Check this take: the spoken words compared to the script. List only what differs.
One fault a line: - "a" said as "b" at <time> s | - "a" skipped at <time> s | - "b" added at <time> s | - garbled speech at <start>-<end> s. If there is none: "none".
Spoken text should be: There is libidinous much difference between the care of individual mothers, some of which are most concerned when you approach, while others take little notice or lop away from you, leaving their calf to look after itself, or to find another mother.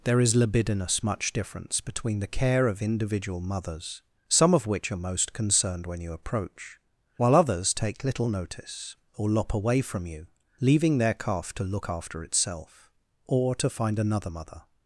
none